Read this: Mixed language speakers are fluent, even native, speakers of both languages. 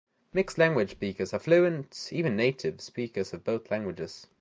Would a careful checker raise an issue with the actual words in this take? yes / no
no